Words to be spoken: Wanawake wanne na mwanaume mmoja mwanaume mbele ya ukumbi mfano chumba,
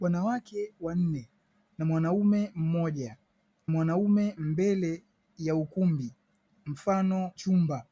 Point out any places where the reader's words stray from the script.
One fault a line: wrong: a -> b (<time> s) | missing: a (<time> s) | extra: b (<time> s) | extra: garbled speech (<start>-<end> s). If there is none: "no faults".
no faults